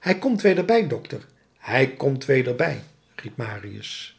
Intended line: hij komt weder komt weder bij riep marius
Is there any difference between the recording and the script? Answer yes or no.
yes